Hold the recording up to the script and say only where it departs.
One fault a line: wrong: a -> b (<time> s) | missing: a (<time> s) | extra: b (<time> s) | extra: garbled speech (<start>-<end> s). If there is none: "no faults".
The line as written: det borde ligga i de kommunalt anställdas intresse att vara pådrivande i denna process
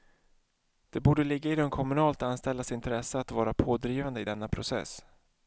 no faults